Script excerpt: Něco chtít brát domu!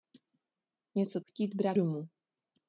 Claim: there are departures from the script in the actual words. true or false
false